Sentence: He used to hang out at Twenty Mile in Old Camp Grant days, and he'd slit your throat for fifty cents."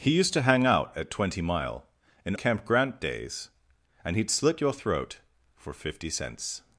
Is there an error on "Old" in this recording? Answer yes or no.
yes